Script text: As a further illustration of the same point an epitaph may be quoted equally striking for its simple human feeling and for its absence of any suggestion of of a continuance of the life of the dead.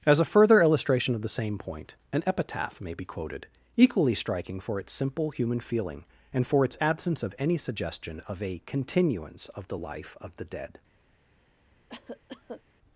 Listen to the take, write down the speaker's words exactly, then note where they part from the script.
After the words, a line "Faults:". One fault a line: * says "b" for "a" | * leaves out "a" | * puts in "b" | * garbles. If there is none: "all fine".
As a further illustration of the same point an epitaph may be quoted equally striking for its simple human feeling and for its absence of any suggestion of a continuance of the life of the dead.
Faults:
* leaves out "of"